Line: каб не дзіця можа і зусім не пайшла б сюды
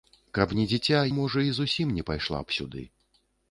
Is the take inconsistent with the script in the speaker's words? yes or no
no